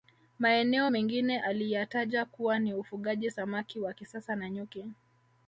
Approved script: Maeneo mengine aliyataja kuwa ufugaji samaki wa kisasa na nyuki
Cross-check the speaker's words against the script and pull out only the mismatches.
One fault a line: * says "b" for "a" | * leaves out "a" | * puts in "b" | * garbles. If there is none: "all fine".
* puts in "ni"